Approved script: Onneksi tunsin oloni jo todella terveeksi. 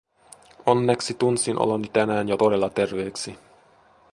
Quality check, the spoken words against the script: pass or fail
fail